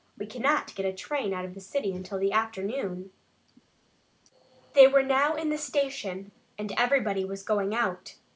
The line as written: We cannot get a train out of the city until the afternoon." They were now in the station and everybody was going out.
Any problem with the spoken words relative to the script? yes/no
no